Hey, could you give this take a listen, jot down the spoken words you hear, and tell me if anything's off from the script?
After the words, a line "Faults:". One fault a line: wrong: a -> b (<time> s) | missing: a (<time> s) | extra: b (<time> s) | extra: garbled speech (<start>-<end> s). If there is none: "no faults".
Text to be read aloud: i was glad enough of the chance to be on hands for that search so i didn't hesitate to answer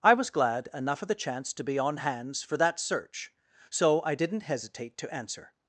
i was glad enough of the chance to be on hands for that search so i didn't hesitate to answer
Faults:
no faults